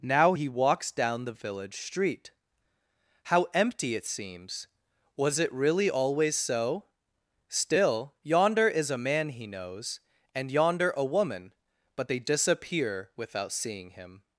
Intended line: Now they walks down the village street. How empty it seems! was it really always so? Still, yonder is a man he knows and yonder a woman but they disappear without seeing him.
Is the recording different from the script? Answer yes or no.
yes